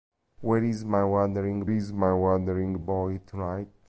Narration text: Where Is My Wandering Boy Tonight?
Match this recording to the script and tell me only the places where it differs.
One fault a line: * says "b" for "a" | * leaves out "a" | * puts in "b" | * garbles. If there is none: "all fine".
* puts in "Is My Wandering"